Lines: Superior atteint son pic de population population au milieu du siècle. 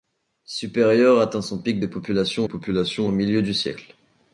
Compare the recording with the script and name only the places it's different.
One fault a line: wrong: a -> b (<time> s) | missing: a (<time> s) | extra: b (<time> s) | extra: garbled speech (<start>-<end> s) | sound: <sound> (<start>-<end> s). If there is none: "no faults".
no faults